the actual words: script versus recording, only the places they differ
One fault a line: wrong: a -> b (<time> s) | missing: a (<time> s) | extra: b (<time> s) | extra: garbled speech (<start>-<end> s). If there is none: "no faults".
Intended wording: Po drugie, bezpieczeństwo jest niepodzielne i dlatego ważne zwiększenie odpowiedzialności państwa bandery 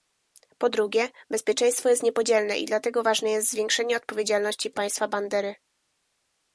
extra: jest (3.3 s)